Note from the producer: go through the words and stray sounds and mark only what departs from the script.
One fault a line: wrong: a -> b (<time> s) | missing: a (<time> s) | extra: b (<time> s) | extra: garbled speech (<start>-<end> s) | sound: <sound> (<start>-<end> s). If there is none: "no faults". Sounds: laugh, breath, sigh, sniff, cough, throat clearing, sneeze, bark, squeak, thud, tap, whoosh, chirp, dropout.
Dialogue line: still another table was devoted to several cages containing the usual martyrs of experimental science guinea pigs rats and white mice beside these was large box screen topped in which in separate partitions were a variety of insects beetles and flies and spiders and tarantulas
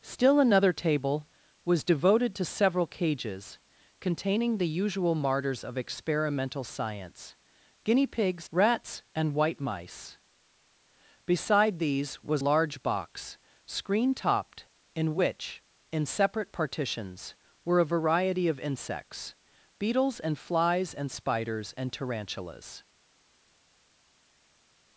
no faults